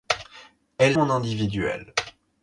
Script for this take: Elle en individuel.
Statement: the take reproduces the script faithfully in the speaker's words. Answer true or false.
true